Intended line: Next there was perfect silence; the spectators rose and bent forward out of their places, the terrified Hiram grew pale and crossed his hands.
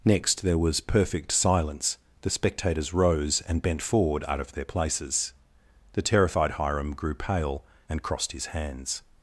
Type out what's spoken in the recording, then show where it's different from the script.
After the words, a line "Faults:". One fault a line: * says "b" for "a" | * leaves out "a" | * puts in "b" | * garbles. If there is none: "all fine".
Next there was perfect silence; the spectators rose and bent forward out of their places, the terrified Hiram grew pale and crossed his hands.
Faults:
all fine